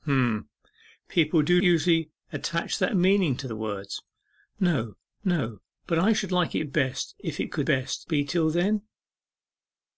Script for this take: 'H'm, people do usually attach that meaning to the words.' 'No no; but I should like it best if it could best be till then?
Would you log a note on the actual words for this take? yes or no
no